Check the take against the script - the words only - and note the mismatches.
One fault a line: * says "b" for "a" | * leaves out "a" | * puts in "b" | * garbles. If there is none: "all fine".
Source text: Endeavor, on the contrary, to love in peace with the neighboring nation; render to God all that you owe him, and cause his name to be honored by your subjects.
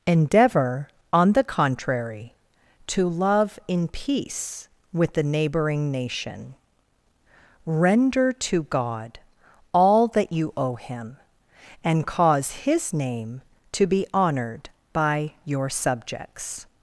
all fine